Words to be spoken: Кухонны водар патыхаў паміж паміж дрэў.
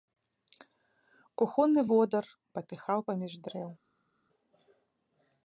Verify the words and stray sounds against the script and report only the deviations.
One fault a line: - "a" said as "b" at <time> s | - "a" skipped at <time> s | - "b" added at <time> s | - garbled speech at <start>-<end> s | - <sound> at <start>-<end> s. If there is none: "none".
- "паміж" skipped at 3.3 s